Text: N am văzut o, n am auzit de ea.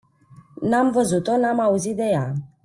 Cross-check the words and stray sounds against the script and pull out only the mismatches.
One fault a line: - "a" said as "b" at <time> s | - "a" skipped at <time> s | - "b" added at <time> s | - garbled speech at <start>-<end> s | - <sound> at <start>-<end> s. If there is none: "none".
none